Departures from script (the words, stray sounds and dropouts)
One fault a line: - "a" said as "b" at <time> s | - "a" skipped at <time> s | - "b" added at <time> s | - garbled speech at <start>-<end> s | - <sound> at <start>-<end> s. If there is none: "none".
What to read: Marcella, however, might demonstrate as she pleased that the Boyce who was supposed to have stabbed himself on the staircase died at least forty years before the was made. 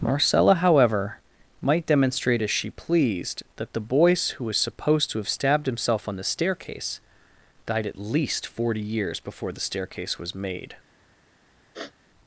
- "staircase" added at 9.6 s
- sniff at 11.7-11.9 s